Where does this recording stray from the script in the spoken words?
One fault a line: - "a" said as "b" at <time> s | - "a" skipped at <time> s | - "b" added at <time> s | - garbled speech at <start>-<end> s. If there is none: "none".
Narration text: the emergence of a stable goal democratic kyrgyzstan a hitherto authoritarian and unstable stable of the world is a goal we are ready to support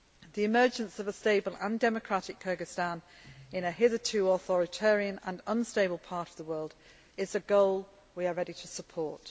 - "goal" said as "and" at 1.6 s
- "in" added at 3.5 s
- "stable" said as "part" at 6.0 s